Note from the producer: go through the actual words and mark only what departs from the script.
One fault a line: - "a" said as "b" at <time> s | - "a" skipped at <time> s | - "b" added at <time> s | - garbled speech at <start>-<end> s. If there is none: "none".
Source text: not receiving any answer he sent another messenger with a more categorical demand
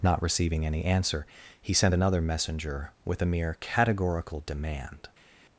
- "more" said as "mere" at 3.2 s